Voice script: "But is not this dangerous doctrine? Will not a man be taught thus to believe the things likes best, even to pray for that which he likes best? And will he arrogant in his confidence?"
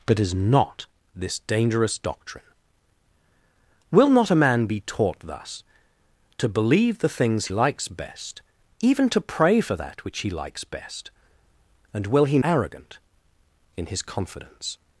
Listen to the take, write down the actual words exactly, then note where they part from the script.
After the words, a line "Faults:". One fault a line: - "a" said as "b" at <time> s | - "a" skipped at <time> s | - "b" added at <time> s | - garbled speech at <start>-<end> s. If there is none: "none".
"But is not this dangerous doctrine? Will not a man be taught thus to believe the things likes best, even to pray for that which he likes best? And will he arrogant in his confidence?"
Faults:
none